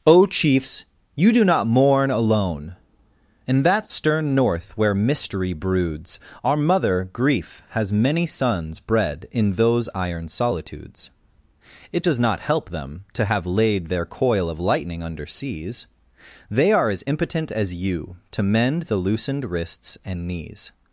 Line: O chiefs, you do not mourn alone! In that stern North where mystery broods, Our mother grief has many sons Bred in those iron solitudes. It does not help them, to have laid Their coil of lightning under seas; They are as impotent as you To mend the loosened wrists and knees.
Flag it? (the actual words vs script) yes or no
no